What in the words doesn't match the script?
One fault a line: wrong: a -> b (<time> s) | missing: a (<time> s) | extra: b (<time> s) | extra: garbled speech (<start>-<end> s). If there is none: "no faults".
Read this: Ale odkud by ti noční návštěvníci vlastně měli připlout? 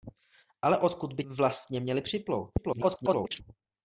missing: ti noční návštěvníci (1.2 s)
extra: garbled speech (2.6-3.4 s)